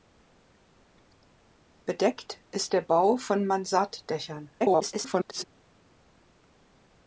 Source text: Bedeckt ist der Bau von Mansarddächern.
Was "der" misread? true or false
false